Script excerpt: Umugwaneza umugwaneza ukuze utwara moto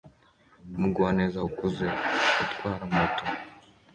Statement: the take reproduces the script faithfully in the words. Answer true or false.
false